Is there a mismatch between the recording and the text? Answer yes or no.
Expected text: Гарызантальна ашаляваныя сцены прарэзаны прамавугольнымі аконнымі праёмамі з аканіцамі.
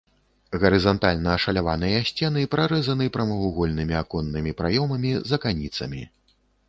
no